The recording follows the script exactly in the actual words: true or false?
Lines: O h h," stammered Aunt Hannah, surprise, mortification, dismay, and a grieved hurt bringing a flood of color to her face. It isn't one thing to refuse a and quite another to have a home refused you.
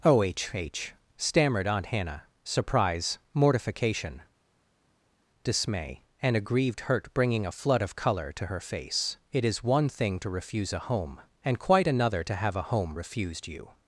false